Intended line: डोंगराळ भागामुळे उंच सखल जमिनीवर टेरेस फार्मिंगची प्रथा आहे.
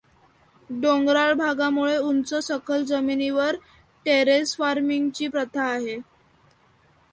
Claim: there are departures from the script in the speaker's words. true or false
false